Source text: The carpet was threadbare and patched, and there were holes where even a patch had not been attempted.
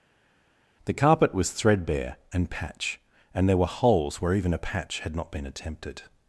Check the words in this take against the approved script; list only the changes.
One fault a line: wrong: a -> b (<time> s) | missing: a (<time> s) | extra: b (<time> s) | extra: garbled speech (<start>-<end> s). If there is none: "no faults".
wrong: patched -> patch (2.5 s)